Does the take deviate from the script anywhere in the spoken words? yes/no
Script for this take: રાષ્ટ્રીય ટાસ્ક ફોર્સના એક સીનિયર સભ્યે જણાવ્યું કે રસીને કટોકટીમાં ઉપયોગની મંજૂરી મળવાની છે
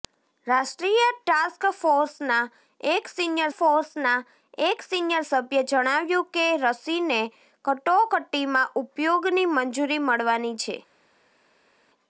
yes